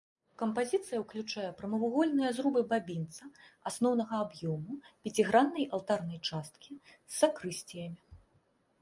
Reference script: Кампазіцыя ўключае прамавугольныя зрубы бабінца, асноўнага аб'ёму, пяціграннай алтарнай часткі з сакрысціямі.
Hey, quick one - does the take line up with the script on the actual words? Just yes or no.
yes